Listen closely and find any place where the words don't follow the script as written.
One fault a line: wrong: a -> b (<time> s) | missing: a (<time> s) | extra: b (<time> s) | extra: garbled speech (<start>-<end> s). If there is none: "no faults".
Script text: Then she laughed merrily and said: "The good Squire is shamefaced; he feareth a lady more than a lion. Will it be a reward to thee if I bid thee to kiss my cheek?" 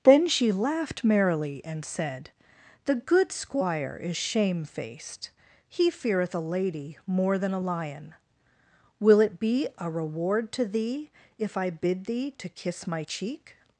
no faults